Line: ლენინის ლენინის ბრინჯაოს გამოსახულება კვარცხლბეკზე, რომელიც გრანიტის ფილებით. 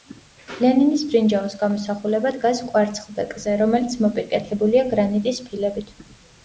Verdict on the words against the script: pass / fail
fail